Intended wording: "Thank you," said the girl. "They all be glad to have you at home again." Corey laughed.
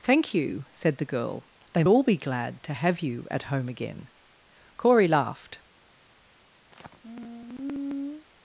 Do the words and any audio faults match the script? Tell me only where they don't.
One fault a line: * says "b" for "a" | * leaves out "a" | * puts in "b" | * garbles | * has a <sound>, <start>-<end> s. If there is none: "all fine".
* has a sigh, 6.7-8.3 s